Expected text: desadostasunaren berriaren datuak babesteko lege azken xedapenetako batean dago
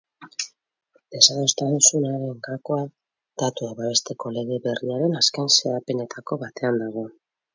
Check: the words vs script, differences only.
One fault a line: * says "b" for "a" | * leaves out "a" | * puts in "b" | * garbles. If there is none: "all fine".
* says "gakoa" for "berriaren"
* puts in "berriaren"